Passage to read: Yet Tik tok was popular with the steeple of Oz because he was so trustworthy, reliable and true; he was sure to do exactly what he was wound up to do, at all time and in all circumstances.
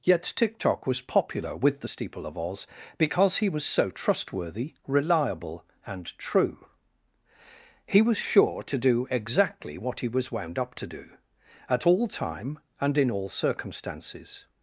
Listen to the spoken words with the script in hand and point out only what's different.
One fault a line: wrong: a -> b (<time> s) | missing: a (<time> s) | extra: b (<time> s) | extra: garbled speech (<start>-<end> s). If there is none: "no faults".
no faults